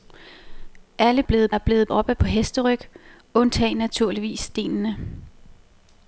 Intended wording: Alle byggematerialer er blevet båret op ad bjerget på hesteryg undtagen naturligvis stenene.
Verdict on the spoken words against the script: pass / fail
fail